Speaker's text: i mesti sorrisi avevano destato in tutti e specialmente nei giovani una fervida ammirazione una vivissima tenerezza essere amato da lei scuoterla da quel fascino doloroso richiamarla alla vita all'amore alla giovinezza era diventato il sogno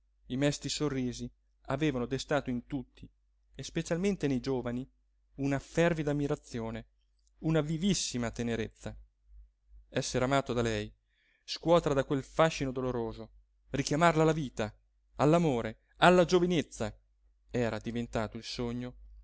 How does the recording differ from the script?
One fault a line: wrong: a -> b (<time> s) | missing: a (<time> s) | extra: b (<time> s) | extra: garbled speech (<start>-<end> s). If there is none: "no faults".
no faults